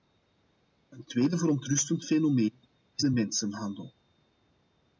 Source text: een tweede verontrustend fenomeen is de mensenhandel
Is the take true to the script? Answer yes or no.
yes